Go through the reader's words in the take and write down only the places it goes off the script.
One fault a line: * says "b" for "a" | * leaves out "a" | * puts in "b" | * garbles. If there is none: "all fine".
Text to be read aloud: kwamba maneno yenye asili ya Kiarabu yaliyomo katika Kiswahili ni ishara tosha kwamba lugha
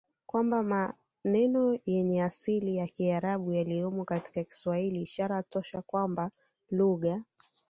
* leaves out "ni"